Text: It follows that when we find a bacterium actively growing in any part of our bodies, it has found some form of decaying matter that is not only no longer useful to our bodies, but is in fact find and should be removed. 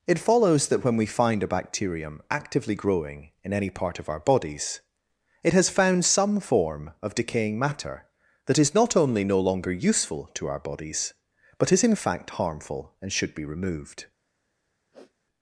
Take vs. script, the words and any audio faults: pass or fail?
fail